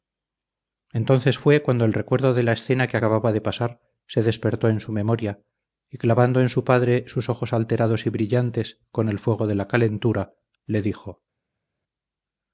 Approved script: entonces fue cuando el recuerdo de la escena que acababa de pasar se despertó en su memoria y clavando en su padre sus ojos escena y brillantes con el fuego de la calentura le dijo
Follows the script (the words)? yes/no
no